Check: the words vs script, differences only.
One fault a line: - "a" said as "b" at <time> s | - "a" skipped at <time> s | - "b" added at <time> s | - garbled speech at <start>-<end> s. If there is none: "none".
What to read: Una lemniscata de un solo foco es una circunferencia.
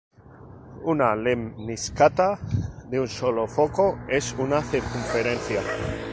none